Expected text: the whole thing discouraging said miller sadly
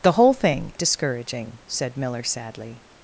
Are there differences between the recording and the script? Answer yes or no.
no